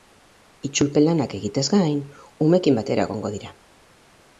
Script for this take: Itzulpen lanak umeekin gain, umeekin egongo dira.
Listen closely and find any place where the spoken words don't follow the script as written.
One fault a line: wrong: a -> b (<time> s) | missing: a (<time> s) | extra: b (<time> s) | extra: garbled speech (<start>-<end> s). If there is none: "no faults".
wrong: umeekin -> egiteaz (1.4 s)
extra: batera (2.8 s)